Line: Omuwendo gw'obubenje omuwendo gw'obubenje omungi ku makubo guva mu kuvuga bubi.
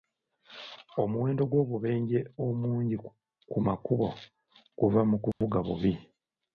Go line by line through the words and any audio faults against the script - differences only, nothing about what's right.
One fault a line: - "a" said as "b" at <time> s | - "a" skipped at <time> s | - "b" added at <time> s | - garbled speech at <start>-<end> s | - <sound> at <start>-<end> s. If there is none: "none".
- "omuwendo gw'obubenje" skipped at 2.2 s
- dropout at 5.3-5.4 s